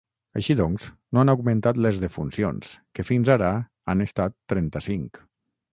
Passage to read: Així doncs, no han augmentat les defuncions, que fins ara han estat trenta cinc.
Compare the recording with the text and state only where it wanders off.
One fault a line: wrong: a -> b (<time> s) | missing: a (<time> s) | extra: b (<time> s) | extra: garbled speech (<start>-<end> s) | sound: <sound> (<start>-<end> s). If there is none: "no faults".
no faults